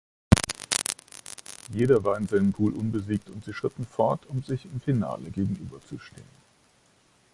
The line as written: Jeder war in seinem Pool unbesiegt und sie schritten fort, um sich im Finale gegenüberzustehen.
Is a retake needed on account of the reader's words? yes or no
no